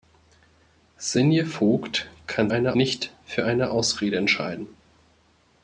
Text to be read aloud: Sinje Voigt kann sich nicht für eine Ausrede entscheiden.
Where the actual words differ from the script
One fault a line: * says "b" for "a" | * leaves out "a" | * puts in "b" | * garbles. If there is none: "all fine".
* says "eine" for "sich"